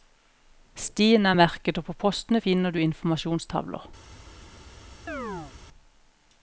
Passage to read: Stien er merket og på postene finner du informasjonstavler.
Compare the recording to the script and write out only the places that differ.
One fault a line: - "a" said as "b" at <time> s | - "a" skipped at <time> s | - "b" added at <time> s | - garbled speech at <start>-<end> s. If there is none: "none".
none